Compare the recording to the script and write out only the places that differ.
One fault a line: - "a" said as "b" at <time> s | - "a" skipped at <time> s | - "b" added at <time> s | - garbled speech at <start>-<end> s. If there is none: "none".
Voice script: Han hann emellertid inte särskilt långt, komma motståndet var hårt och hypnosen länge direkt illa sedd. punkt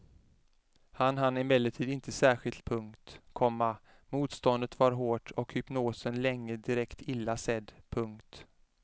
- "långt" said as "punkt" at 2.6 s